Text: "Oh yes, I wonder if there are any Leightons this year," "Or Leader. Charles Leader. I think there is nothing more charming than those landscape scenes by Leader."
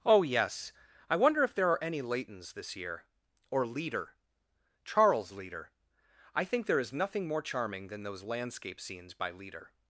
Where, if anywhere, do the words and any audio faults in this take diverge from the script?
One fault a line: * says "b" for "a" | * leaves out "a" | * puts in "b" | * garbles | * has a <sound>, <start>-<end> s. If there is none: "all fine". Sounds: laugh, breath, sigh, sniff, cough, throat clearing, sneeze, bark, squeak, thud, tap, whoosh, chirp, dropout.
all fine